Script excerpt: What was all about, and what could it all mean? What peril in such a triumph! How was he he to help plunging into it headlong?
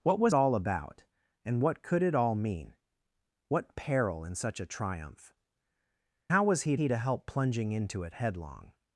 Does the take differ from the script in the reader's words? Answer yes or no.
no